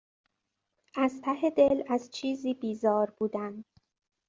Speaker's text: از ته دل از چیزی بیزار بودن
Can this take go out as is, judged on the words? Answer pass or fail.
pass